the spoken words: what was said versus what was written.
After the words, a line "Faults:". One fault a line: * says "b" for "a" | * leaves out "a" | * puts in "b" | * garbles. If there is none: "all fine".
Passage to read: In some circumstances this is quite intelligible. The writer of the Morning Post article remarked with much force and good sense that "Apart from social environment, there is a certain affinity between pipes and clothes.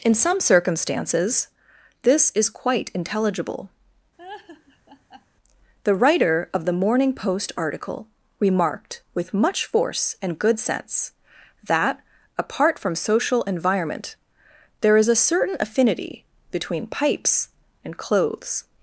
In some circumstances this is quite intelligible. The writer of the Morning Post article remarked with much force and good sense that "Apart from social environment, there is a certain affinity between pipes and clothes.
Faults:
all fine